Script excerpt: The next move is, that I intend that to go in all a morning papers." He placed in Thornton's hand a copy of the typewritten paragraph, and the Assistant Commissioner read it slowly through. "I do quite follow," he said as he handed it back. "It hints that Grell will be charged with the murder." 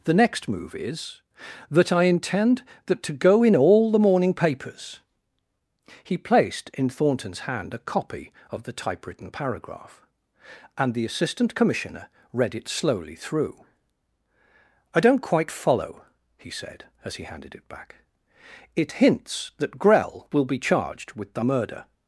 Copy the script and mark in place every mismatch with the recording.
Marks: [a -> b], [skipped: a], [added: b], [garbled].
The next move is, that I intend that to go in all [a -> the] morning papers." He placed in Thornton's hand a copy of the typewritten paragraph, and the Assistant Commissioner read it slowly through. "I [do -> don't] quite follow," he said as he handed it back. "It hints that Grell will be charged with the murder."